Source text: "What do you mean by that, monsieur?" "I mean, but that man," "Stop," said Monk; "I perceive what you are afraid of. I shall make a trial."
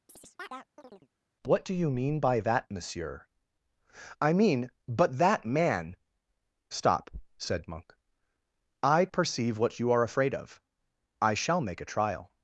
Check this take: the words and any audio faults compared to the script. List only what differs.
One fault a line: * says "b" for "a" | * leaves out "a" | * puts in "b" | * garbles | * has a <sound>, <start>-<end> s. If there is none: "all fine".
* has a chirp, 0.1-1.1 s